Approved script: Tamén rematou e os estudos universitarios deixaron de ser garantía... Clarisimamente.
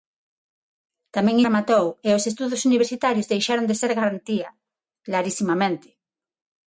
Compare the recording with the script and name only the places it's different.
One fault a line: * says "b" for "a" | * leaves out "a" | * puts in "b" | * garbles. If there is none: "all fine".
all fine